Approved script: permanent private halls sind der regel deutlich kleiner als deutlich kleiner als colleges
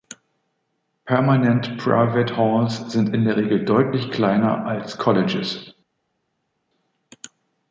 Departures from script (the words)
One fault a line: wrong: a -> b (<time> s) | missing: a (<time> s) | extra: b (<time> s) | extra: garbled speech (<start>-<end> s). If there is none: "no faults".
extra: in (3.1 s)
missing: deutlich kleiner als (5.0 s)